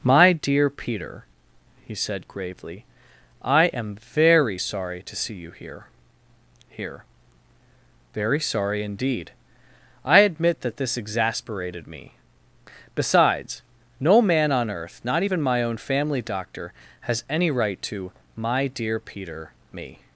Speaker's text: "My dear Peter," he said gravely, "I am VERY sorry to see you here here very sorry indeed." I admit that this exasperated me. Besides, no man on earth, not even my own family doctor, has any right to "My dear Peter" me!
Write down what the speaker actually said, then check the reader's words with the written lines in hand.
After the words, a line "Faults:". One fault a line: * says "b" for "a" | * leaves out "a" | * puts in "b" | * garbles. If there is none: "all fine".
"My dear Peter," he said gravely, "I am VERY sorry to see you here here very sorry indeed." I admit that this exasperated me. Besides, no man on earth, not even my own family doctor, has any right to "My dear Peter" me!
Faults:
all fine